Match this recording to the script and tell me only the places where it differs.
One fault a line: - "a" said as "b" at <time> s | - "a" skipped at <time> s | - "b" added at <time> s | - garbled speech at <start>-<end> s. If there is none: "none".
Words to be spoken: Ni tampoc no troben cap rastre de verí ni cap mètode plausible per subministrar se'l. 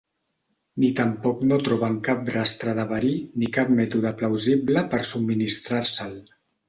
none